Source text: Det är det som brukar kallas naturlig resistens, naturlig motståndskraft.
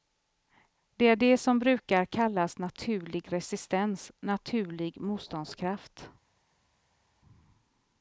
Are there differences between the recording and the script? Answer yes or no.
no